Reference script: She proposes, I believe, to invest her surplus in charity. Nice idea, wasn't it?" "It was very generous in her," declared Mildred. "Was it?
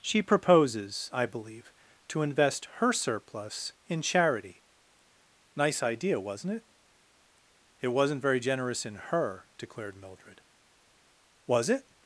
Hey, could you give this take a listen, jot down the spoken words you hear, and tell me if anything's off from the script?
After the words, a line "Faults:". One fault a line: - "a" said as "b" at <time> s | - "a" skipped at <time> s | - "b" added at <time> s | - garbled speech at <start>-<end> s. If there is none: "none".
She proposes, I believe, to invest her surplus in charity. Nice idea, wasn't it?" "It wasn't very generous in her," declared Mildred. "Was it?
Faults:
- "was" said as "wasn't" at 7.9 s